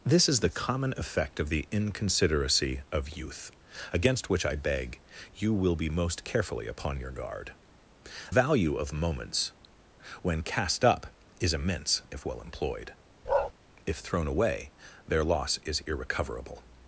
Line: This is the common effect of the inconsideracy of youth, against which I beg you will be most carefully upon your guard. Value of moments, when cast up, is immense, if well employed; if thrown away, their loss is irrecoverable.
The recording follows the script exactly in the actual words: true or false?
true